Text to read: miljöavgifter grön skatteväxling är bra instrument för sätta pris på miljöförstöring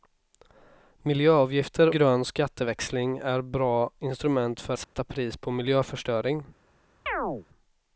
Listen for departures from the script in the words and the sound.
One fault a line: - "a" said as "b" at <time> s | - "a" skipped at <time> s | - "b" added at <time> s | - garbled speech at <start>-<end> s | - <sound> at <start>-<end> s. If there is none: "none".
- dropout at 4.8-4.9 s
- chirp at 7.1-7.5 s